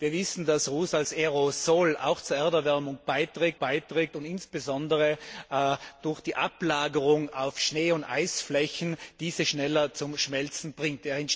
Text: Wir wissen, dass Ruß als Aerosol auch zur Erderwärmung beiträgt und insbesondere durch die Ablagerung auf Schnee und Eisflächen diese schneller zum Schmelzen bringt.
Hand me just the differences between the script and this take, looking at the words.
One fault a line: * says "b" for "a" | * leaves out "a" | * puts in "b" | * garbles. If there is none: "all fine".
* puts in "beiträgt"